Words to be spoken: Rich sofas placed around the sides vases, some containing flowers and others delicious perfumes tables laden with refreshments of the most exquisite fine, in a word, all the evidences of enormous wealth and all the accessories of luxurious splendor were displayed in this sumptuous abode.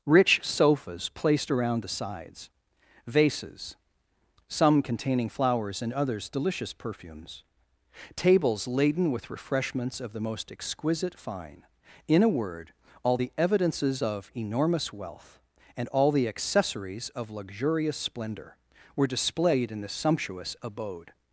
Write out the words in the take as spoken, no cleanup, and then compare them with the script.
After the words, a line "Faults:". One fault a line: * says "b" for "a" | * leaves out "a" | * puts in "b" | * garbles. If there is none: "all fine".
Rich sofas placed around the sides vases, some containing flowers and others delicious perfumes tables laden with refreshments of the most exquisite fine, in a word, all the evidences of enormous wealth and all the accessories of luxurious splendor were displayed in this sumptuous abode.
Faults:
all fine